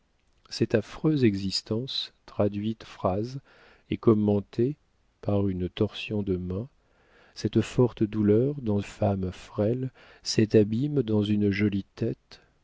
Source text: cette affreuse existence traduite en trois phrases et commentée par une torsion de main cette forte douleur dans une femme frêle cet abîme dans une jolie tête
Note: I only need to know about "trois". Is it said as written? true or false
false